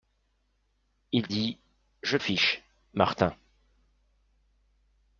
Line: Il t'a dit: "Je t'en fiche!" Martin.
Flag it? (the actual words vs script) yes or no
yes